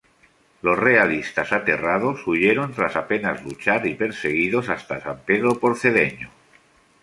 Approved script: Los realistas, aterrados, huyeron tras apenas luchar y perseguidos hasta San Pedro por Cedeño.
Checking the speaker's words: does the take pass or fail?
pass